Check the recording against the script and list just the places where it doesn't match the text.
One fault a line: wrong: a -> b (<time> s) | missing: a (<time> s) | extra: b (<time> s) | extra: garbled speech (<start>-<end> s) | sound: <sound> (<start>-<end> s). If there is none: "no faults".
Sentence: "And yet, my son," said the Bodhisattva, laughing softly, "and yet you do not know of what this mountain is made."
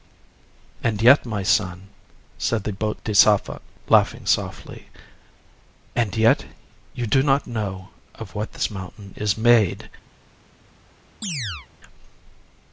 sound: chirp (11.2-11.7 s)